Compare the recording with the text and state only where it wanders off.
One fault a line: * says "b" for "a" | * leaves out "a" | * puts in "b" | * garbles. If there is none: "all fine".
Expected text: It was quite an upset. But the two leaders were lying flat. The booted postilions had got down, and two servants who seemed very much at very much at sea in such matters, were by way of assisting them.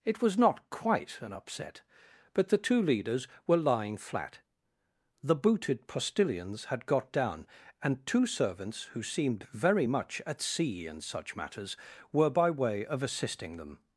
* puts in "not"
* leaves out "very much at"